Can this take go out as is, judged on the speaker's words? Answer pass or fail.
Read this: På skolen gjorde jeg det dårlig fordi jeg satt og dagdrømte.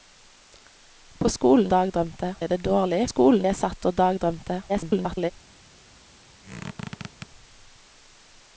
fail